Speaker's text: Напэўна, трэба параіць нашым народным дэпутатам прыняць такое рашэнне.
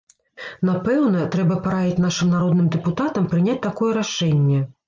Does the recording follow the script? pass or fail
pass